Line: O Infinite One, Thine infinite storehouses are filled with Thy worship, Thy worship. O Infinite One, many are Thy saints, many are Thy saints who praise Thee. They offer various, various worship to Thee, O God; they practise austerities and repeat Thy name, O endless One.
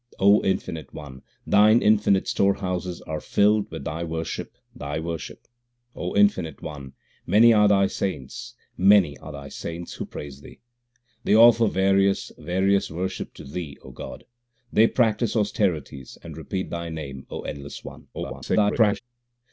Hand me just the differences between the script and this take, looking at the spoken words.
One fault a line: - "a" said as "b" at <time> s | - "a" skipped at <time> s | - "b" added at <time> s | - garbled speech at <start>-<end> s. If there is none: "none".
- garbled speech at 18.1-19.0 s